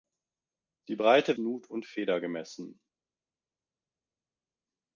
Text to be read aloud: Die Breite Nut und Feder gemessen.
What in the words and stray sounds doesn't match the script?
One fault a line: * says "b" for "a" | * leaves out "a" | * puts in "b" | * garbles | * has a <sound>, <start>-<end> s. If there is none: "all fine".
all fine